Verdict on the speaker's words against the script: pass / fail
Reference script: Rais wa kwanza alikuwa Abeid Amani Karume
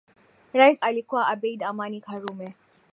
fail